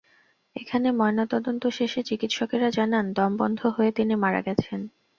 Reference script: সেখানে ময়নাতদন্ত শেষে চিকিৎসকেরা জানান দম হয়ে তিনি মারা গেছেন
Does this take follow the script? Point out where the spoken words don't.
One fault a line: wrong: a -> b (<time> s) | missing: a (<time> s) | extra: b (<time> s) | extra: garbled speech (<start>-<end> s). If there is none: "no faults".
wrong: সেখানে -> এখানে (0.6 s)
extra: বন্ধ (3.4 s)